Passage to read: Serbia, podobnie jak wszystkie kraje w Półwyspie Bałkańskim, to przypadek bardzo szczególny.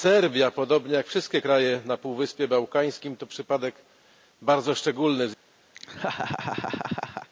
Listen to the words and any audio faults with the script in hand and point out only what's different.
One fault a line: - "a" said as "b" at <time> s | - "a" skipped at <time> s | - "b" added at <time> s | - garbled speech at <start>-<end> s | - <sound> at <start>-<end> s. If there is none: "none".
- "w" said as "na" at 1.8 s
- laugh at 5.7-7.3 s